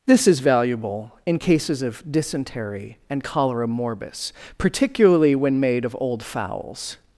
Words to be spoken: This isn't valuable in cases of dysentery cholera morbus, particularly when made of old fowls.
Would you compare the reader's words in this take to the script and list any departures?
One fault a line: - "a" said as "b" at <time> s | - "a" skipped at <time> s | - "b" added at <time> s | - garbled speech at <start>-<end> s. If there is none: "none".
- "isn't" said as "is" at 0.3 s
- "and" added at 3.1 s